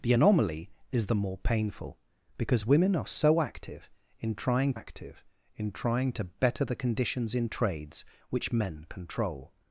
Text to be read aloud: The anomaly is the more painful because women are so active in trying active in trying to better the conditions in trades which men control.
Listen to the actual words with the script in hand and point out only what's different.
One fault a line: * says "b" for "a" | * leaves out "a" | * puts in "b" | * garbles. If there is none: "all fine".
all fine